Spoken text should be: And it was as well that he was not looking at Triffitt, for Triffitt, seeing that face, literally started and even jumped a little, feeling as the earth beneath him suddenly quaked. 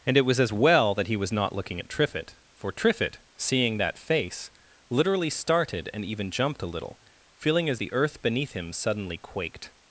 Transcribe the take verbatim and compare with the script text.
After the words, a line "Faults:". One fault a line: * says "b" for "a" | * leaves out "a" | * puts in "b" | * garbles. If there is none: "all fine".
And it was as well that he was not looking at Triffitt, for Triffitt, seeing that face, literally started and even jumped a little, feeling as the earth beneath him suddenly quaked.
Faults:
all fine